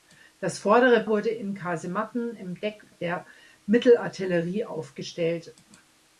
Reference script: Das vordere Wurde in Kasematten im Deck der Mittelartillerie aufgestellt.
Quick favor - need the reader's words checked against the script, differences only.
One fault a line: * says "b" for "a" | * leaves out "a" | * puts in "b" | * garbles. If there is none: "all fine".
all fine